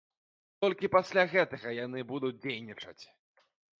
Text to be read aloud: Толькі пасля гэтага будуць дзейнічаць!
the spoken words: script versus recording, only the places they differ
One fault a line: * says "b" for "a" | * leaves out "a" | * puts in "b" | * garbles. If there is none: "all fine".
* puts in "яны"